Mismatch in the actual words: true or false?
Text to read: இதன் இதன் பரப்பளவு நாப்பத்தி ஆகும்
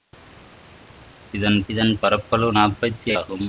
false